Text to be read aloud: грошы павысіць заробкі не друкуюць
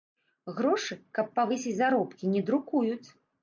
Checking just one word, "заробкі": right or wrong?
right